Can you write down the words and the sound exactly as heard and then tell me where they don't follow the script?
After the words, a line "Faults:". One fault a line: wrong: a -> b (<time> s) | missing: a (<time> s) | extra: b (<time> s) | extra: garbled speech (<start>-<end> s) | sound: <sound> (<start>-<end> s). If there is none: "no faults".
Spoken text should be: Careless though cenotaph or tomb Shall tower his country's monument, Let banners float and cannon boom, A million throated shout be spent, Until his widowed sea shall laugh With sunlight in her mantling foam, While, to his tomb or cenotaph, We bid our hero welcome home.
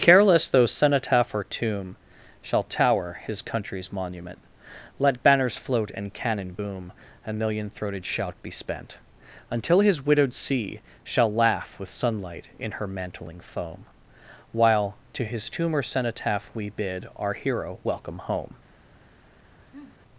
Careless though cenotaph or tomb Shall tower his country's monument, Let banners float and cannon boom, A million throated shout be spent, Until his widowed sea shall laugh With sunlight in her mantling foam, While, to his tomb or cenotaph, We bid our hero welcome home.
Faults:
sound: sniff (19.7-20.0 s)